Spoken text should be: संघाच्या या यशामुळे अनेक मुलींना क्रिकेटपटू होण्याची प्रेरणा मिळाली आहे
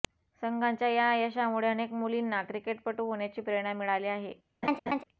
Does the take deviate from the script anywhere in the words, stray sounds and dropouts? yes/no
yes